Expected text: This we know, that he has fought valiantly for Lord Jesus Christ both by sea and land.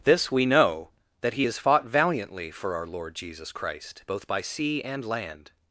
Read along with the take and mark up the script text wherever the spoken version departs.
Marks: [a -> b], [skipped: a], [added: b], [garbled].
This we know, that he has fought valiantly for [added: our] Lord Jesus Christ both by sea and land.